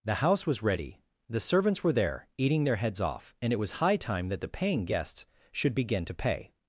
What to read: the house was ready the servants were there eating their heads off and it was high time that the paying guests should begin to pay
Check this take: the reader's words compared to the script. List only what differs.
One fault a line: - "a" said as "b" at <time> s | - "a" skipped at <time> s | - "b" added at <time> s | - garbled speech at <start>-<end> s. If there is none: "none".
none